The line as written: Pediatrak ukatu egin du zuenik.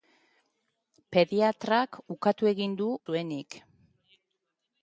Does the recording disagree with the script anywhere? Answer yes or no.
no